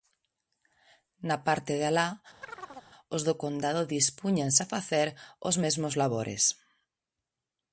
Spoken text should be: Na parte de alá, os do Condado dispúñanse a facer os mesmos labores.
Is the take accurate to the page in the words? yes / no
yes